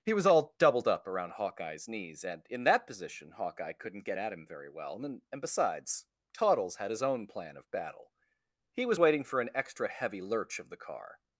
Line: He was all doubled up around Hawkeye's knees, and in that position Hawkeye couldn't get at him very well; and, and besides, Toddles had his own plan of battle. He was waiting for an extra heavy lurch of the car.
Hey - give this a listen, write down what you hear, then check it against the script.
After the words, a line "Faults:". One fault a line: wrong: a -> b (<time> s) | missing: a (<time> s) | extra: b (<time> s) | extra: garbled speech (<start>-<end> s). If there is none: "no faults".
He was all doubled up around Hawkeye's knees, and in that position Hawkeye couldn't get at him very well; and, and besides, Toddles had his own plan of battle. He was waiting for an extra heavy lurch of the car.
Faults:
no faults